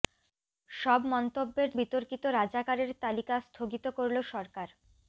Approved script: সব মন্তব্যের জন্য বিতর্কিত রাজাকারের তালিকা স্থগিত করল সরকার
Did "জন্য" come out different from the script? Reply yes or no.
yes